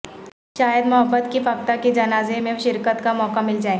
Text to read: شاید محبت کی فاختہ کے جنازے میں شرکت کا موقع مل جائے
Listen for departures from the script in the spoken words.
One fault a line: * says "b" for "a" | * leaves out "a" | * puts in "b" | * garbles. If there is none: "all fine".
all fine